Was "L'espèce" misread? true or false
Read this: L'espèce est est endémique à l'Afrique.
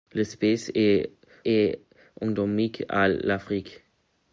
false